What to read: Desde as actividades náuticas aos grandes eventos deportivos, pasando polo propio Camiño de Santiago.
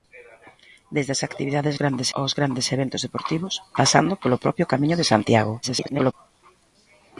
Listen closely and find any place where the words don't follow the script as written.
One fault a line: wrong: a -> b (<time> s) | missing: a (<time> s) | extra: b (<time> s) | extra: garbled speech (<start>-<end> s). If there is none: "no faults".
wrong: náuticas -> grandes (1.8 s)
extra: garbled speech (5.6-6.1 s)